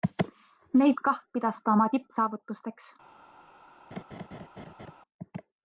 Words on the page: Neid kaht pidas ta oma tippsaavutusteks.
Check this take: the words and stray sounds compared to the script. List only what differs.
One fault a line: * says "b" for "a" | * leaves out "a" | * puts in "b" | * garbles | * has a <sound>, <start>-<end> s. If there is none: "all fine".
* has a laugh, 3.9-5.0 s